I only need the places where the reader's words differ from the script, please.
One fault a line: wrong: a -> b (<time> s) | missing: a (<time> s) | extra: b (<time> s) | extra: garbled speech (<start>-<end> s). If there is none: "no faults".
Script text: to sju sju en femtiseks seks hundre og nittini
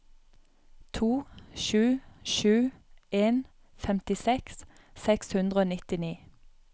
no faults